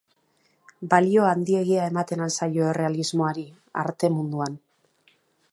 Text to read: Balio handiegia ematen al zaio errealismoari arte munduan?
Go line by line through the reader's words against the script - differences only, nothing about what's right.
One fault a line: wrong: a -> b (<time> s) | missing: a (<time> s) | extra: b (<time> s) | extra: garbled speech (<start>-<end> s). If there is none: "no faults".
no faults